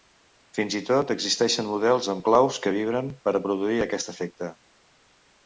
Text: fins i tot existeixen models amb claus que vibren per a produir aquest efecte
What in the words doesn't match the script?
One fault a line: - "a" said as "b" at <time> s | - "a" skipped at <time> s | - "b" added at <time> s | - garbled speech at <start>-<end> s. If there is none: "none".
none